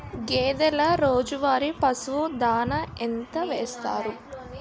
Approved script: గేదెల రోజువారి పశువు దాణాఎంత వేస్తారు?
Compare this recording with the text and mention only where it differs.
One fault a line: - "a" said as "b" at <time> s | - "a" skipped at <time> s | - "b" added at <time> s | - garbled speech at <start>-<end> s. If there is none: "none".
none